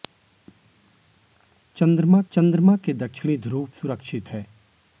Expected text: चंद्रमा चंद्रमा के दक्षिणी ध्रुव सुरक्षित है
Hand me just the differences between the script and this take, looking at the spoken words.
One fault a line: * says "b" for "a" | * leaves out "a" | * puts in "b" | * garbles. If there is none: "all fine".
all fine